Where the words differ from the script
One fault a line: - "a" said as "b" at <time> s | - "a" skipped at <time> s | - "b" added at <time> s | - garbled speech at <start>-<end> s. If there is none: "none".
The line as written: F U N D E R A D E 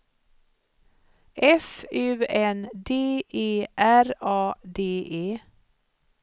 none